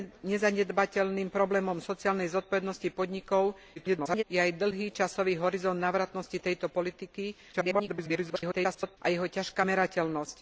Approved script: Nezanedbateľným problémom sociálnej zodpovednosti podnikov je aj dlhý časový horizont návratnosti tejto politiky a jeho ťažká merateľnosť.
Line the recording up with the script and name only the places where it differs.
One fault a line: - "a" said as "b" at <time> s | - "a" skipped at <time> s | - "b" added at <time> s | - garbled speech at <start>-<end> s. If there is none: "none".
- garbled speech at 3.8-4.2 s
- garbled speech at 7.5-9.0 s